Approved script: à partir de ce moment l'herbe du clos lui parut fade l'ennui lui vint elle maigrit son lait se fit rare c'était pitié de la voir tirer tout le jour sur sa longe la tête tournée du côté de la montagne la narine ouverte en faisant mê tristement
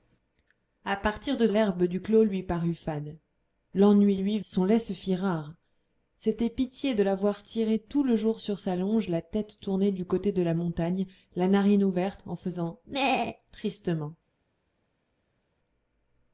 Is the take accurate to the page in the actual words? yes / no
no